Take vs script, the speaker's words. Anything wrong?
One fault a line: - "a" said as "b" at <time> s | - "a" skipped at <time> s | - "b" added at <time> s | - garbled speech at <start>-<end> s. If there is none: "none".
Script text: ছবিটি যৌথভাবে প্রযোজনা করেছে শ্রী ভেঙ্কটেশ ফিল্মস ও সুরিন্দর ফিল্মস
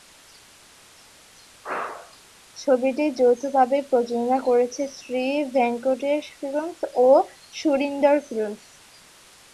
none